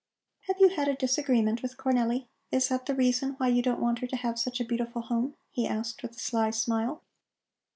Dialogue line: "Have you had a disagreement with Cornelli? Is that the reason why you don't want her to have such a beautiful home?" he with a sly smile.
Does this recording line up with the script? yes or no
no